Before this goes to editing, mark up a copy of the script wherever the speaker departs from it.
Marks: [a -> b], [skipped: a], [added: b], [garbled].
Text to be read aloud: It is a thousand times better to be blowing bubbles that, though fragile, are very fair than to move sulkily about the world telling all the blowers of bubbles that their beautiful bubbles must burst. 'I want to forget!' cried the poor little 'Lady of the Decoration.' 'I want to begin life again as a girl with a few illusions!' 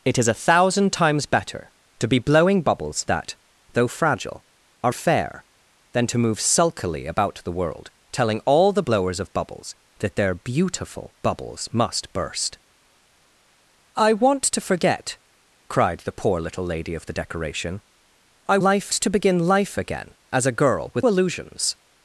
It is a thousand times better to be blowing bubbles that, though fragile, are [skipped: very] fair than to move sulkily about the world telling all the blowers of bubbles that their beautiful bubbles must burst. 'I want to forget!' cried the poor little 'Lady of the Decoration.' 'I [want -> life] to begin life again as a girl with [skipped: a few] illusions!'